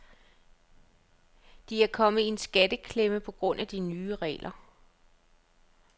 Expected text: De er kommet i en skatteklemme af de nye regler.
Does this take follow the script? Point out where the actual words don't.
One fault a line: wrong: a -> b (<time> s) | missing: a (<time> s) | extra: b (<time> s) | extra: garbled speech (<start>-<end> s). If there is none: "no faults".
extra: på grund (3.2 s)